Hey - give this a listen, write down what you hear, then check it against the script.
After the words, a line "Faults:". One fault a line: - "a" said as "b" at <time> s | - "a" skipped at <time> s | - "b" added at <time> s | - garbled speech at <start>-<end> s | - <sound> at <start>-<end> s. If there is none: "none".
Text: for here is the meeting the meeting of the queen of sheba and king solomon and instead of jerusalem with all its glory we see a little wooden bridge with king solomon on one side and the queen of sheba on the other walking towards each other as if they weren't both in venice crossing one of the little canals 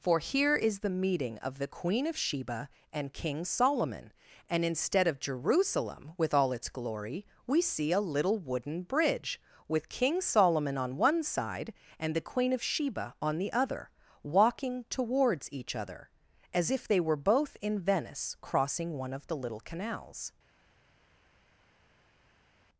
for here is the meeting of the queen of sheba and king solomon and instead of jerusalem with all its glory we see a little wooden bridge with king solomon on one side and the queen of sheba on the other walking towards each other as if they were both in venice crossing one of the little canals
Faults:
- "the meeting" skipped at 1.4 s
- "weren't" said as "were" at 17.0 s